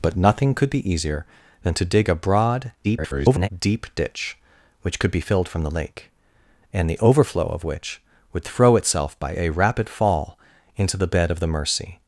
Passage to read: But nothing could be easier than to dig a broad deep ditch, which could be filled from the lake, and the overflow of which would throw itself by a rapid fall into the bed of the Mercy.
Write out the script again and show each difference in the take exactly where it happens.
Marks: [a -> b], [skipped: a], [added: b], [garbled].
But nothing could be easier than to dig a broad [garbled] deep ditch, which could be filled from the lake, and the overflow of which would throw itself by a rapid fall into the bed of the Mercy.